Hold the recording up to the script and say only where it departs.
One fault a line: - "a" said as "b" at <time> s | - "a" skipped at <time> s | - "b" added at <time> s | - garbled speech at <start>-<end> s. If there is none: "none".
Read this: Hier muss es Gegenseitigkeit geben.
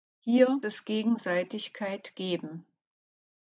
- "muss" skipped at 0.6 s